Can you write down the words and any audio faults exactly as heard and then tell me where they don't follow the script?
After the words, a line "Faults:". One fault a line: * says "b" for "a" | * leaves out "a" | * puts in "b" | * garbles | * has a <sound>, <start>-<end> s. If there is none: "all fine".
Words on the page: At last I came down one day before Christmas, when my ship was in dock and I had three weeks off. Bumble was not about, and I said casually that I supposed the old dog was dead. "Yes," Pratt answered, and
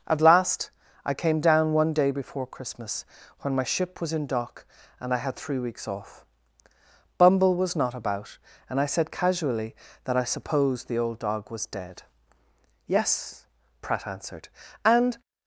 At last I came down one day before Christmas, when my ship was in dock and I had three weeks off. Bumble was not about, and I said casually that I supposed the old dog was dead. "Yes," Pratt answered, and
Faults:
all fine